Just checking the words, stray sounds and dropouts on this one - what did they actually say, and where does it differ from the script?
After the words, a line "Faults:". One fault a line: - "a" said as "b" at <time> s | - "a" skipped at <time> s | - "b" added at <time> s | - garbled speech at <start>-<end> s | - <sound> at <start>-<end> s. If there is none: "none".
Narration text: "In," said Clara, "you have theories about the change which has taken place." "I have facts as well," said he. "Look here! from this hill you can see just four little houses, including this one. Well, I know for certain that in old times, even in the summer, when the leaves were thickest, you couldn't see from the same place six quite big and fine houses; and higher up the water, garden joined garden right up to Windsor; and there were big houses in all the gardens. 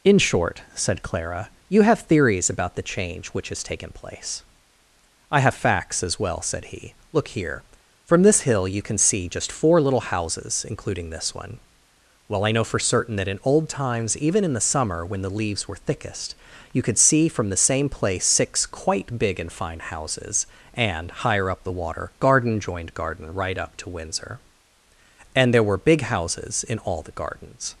"In short," said Clara, "you have theories about the change which has taken place." "I have facts as well," said he. "Look here! from this hill you can see just four little houses, including this one. Well, I know for certain that in old times, even in the summer, when the leaves were thickest, you could see from the same place six quite big and fine houses; and higher up the water, garden joined garden right up to Windsor; and there were big houses in all the gardens.
Faults:
- "short" added at 0.2 s
- "couldn't" said as "could" at 16.8 s